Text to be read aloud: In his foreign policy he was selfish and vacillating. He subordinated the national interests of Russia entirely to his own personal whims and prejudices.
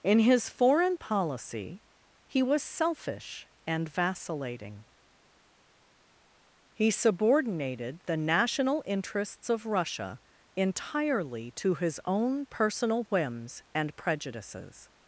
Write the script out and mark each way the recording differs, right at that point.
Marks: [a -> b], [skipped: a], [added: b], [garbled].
In his foreign policy he was selfish and vacillating. He subordinated the national interests of Russia entirely to his own personal whims and prejudices.